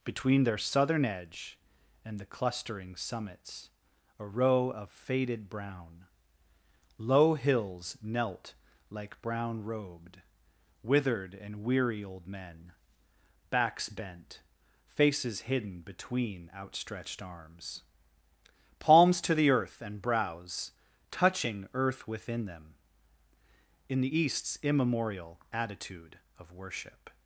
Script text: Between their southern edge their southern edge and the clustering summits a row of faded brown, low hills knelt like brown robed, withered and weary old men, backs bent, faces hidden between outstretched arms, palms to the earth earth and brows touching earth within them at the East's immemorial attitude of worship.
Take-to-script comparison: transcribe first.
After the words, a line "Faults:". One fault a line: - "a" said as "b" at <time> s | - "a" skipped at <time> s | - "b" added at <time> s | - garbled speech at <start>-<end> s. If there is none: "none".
Between their southern edge and the clustering summits a row of faded brown, low hills knelt like brown robed, withered and weary old men, backs bent, faces hidden between outstretched arms, palms to the earth and brows touching earth within them in the East's immemorial attitude of worship.
Faults:
- "their southern edge" skipped at 1.6 s
- "earth" skipped at 19.8 s
- "at" said as "in" at 23.9 s